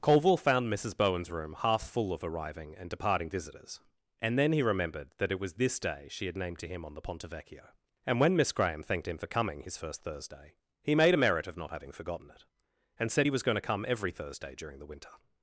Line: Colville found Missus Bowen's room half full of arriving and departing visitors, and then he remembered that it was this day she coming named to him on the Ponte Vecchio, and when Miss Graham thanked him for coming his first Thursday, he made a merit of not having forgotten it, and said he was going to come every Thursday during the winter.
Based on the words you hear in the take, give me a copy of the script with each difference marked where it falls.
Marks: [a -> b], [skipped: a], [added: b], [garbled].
Colville found Missus Bowen's room half full of arriving and departing visitors, and then he remembered that it was this day she [coming -> had] named to him on the Ponte Vecchio, and when Miss Graham thanked him for coming his first Thursday, he made a merit of not having forgotten it, and said he was going to come every Thursday during the winter.